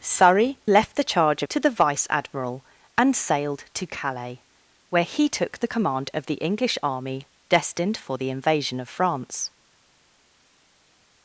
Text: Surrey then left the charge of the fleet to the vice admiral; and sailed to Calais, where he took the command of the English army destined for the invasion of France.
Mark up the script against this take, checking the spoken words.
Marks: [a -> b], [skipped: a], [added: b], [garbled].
Surrey [skipped: then] left the charge [skipped: of the fleet] to the vice admiral; and sailed to Calais, where he took the command of the English army destined for the invasion of France.